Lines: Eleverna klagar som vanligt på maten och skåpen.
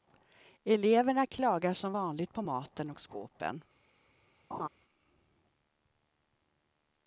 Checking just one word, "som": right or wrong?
right